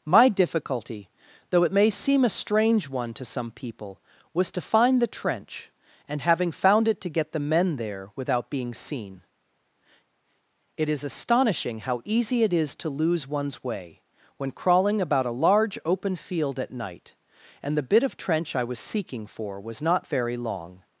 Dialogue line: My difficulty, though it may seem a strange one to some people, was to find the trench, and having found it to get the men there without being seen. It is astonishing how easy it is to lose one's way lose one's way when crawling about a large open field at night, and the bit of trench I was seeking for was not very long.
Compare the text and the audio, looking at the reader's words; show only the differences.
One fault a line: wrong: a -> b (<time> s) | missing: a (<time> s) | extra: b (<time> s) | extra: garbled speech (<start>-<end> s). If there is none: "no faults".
missing: lose one's way (14.0 s)